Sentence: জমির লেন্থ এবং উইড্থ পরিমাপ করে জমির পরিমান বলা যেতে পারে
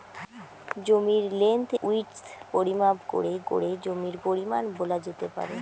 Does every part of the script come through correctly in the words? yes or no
no